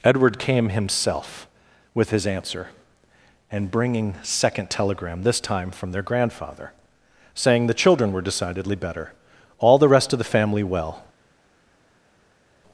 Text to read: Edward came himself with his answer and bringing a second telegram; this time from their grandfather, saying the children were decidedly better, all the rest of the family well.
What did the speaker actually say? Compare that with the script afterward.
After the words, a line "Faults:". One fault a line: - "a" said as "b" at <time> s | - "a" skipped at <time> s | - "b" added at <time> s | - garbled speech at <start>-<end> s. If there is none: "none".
Edward came himself with his answer and bringing second telegram; this time from their grandfather, saying the children were decidedly better, all the rest of the family well.
Faults:
- "a" skipped at 4.2 s